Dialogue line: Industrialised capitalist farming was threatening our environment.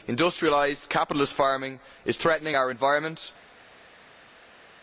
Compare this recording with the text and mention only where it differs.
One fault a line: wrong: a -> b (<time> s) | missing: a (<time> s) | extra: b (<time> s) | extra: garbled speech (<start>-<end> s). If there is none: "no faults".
wrong: was -> is (2.0 s)